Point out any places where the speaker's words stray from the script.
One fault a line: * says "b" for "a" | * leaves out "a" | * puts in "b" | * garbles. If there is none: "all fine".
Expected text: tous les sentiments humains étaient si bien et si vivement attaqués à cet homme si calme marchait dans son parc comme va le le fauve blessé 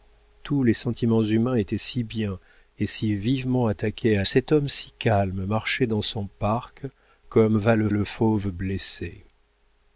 all fine